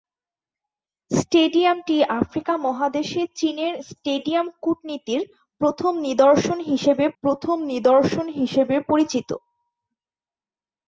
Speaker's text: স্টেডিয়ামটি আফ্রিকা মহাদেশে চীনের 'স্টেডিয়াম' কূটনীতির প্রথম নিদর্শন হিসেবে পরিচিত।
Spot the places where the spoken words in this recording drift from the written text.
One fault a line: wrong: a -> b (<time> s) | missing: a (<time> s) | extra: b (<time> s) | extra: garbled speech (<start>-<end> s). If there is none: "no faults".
extra: প্রথম নিদর্শন হিসেবে (7.2 s)